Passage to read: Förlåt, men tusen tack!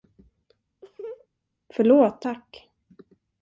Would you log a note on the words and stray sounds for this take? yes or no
yes